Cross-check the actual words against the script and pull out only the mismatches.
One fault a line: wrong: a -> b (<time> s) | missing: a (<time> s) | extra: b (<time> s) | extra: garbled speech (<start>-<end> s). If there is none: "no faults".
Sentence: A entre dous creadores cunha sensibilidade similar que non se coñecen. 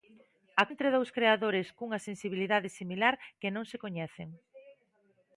no faults